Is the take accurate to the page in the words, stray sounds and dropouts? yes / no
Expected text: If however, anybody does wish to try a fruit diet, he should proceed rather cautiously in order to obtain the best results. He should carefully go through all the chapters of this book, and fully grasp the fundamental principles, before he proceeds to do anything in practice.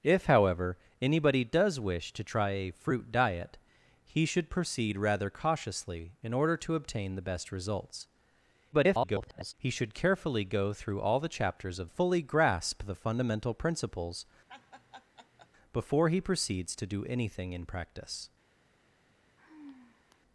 no